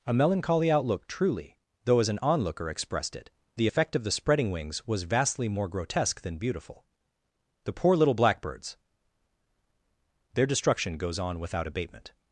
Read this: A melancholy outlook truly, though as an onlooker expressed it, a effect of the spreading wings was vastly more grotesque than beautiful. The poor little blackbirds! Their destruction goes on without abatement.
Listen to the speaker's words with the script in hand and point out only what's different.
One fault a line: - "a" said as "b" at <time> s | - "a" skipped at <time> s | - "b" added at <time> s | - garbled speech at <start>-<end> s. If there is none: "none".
- "a" said as "the" at 3.5 s